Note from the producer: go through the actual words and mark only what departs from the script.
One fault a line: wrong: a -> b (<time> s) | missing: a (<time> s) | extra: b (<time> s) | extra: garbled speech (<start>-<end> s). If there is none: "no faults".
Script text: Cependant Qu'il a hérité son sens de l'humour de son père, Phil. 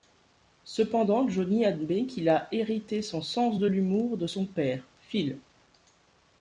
extra: Johnny admet (1.3 s)